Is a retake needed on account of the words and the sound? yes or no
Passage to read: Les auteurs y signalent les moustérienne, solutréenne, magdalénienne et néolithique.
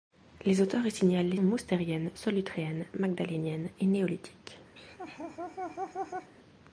yes